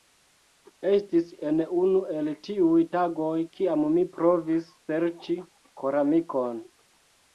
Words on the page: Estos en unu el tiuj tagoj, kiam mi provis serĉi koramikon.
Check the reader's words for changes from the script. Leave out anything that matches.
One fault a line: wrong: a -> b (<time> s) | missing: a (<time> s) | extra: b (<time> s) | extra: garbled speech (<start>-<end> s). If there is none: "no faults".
wrong: Estos -> Estis (0.9 s)